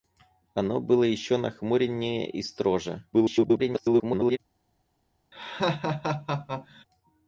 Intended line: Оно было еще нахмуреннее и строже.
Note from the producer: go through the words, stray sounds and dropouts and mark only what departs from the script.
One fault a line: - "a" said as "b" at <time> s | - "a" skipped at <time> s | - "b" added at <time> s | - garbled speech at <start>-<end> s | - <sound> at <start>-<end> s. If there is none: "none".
- garbled speech at 3.1-4.4 s
- laugh at 5.3-6.8 s